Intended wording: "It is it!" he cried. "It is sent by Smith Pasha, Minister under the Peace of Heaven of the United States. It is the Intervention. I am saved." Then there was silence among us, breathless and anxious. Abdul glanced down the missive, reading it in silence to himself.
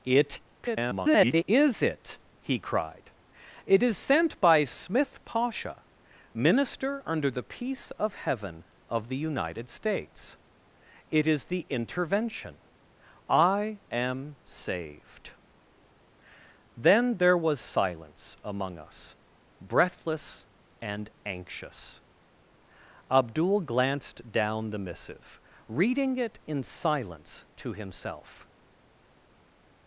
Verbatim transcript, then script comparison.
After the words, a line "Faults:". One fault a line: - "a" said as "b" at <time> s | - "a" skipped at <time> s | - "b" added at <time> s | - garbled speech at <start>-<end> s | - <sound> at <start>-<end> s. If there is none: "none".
"It [garbled] is it!" he cried. "It is sent by Smith Pasha, Minister under the Peace of Heaven of the United States. It is the Intervention. I am saved." Then there was silence among us, breathless and anxious. Abdul glanced down the missive, reading it in silence to himself.
Faults:
- garbled speech at 0.6-1.4 s